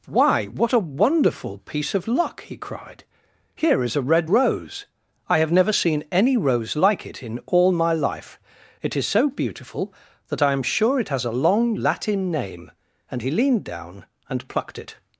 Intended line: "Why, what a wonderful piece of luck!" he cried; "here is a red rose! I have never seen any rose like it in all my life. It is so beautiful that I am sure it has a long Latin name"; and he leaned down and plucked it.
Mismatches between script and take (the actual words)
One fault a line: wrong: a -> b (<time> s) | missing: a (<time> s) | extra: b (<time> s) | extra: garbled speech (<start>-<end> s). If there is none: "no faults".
no faults